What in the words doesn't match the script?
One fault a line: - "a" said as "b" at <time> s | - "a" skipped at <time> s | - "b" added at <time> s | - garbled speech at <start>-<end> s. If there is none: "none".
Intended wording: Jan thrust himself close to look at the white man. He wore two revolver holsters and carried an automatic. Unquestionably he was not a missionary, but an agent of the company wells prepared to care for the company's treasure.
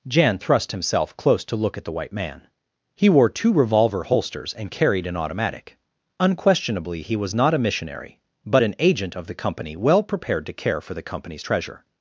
- "wells" said as "well" at 9.7 s